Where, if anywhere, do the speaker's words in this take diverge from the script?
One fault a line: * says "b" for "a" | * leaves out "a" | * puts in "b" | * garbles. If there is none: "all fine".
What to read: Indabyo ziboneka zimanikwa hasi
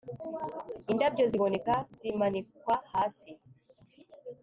all fine